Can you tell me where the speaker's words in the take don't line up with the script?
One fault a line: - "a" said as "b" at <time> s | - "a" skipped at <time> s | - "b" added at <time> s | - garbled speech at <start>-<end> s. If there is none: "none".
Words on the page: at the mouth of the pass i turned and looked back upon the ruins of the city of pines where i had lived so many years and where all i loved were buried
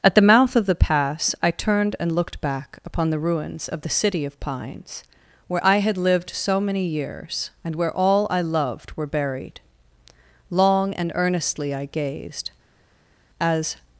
- "long and earnestly i gazed as" added at 10.5 s